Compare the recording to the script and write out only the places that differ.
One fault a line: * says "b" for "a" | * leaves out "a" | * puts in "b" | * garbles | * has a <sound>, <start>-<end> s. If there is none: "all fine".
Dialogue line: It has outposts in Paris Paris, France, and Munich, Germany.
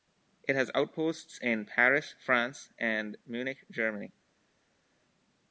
* leaves out "Paris"